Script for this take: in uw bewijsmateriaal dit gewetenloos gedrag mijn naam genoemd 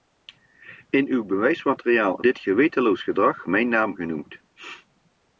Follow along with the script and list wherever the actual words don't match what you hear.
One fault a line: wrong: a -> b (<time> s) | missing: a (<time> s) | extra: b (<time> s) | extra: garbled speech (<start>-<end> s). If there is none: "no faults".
no faults